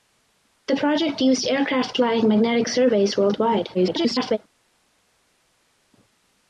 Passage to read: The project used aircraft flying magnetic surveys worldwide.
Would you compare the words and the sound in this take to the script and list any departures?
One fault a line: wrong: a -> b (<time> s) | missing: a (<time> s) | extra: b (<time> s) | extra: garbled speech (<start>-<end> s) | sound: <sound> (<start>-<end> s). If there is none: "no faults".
extra: garbled speech (3.7-4.4 s)